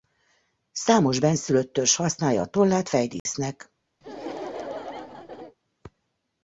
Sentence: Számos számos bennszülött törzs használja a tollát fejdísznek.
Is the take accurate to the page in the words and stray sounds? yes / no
no